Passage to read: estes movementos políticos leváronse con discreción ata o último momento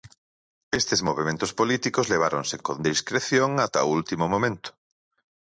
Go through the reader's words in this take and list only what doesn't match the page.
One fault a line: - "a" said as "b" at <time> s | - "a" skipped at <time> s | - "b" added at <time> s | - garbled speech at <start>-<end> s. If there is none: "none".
none